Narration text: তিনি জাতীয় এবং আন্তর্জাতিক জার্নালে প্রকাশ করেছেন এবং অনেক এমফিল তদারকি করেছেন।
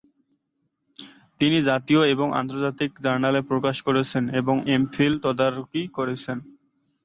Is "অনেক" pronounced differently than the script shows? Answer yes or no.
yes